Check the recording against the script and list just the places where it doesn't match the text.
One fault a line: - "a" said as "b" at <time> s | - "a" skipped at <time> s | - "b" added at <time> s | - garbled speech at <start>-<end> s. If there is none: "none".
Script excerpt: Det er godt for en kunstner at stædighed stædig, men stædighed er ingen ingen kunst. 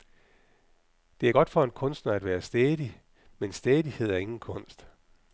- "stædighed" said as "være" at 2.2 s
- "ingen" skipped at 4.4 s